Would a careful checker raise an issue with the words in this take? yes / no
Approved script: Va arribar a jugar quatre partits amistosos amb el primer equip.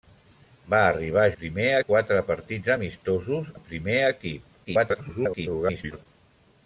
yes